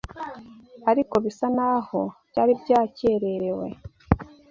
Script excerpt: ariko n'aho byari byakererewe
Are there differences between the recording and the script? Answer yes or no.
yes